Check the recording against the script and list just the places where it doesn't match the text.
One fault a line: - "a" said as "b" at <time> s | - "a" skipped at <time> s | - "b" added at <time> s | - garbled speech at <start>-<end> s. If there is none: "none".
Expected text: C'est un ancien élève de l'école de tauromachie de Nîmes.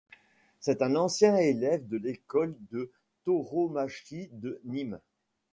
none